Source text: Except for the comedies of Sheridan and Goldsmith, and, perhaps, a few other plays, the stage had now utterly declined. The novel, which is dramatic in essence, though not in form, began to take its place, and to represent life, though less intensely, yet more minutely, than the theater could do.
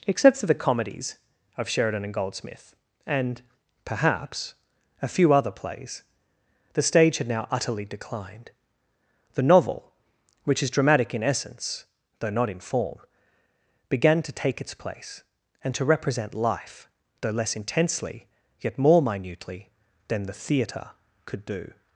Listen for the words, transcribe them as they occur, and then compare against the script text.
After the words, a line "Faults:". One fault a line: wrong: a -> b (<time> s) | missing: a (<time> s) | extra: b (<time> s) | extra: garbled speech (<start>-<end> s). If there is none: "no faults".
Except for the comedies of Sheridan and Goldsmith, and, perhaps, a few other plays, the stage had now utterly declined. The novel, which is dramatic in essence, though not in form, began to take its place, and to represent life, though less intensely, yet more minutely, than the theater could do.
Faults:
no faults